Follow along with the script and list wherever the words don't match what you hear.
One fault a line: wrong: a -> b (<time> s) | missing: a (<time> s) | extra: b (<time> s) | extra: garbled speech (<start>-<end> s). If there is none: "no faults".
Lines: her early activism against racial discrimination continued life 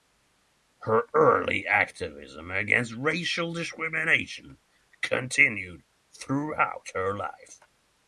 extra: throughout her (6.1 s)